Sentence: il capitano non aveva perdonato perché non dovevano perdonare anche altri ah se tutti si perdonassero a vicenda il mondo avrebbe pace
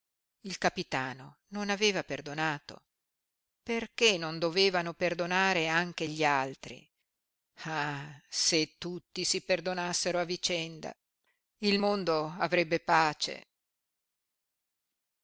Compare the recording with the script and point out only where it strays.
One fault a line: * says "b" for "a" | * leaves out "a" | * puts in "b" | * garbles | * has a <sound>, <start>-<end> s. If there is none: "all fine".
* puts in "gli"